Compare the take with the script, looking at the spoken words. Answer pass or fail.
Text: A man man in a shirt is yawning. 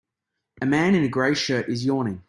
fail